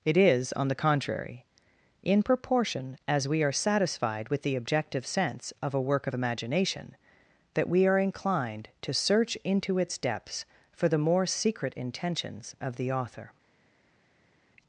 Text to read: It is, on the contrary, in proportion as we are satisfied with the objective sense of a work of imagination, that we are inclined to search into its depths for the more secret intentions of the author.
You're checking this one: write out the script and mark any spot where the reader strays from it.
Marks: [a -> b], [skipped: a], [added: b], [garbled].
It is, on the contrary, in proportion as we are satisfied with the objective sense of a work of imagination, that we are inclined to search into its depths for the more secret intentions of the author.